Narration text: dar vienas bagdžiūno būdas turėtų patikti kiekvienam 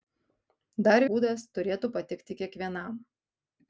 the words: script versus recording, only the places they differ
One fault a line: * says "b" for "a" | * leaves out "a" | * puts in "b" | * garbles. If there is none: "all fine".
* leaves out "vienas bagdžiūno"